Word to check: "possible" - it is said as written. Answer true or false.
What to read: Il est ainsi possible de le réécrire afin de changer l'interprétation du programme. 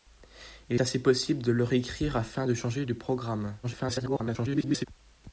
true